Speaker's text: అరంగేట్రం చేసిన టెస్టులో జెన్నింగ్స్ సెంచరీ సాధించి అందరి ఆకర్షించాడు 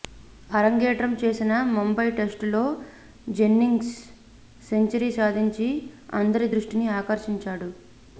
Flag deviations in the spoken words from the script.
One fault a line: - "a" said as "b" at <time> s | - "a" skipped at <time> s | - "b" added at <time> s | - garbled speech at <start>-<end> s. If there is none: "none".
- "ముంబై" added at 1.7 s
- "దృష్టిని" added at 6.5 s